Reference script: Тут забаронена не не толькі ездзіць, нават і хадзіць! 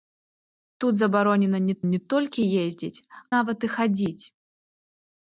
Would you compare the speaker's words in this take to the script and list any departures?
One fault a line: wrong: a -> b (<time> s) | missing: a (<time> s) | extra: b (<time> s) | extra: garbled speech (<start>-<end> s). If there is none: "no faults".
no faults